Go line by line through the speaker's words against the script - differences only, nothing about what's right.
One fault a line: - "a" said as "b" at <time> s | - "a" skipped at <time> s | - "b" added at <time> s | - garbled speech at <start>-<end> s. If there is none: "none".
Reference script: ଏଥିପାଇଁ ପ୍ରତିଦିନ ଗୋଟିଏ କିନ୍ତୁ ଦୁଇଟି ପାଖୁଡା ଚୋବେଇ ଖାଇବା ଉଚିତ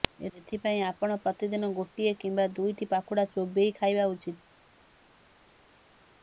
- "ଆପଣ" added at 0.8 s
- "କିନ୍ତୁ" said as "କିମ୍ବା" at 2.2 s